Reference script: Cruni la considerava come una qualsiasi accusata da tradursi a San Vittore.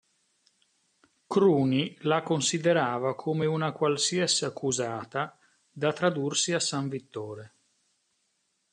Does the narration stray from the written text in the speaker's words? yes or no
no